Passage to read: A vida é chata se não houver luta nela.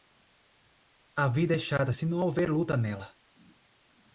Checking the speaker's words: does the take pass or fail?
pass